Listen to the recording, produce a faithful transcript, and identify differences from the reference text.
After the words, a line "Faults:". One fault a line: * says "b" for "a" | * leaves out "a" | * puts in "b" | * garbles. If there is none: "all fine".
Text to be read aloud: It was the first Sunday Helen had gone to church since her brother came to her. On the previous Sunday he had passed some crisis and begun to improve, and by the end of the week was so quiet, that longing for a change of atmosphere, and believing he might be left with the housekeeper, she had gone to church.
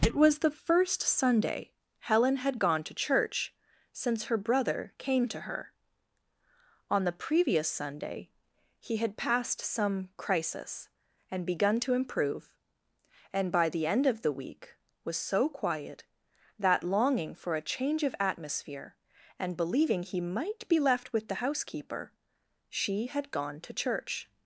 It was the first Sunday Helen had gone to church since her brother came to her. On the previous Sunday he had passed some crisis and begun to improve, and by the end of the week was so quiet, that longing for a change of atmosphere, and believing he might be left with the housekeeper, she had gone to church.
Faults:
all fine